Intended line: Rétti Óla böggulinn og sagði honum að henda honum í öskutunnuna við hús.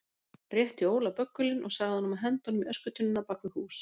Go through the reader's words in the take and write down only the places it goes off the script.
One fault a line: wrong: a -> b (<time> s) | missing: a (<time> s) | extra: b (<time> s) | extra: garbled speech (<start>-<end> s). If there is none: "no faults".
extra: bak (3.3 s)